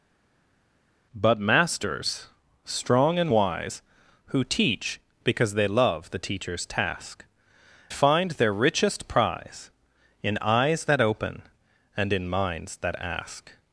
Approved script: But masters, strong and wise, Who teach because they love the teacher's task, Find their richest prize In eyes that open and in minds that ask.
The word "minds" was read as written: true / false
true